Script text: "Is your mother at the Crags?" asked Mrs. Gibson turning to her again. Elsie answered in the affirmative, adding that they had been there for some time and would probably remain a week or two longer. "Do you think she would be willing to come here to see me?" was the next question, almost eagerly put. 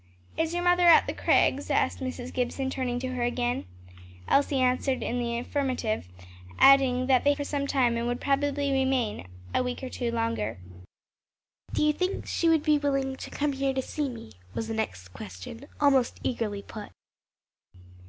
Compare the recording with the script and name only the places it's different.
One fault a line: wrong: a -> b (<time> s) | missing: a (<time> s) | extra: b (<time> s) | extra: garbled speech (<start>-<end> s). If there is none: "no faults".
missing: had been there (7.3 s)